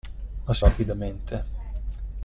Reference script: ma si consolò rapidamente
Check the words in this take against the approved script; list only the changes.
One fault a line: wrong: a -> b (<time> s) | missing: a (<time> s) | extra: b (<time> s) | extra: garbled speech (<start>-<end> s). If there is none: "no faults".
missing: consolò (0.7 s)